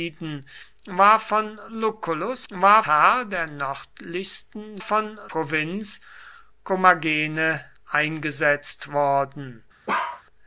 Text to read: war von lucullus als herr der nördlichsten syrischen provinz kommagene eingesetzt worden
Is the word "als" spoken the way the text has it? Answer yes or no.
no